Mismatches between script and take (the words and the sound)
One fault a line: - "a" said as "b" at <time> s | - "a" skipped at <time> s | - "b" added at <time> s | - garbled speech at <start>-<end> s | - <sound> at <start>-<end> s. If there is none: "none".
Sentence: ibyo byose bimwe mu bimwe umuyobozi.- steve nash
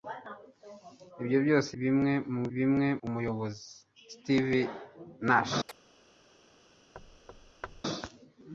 - chirp at 5.7-5.8 s
- thud at 6.9-7.8 s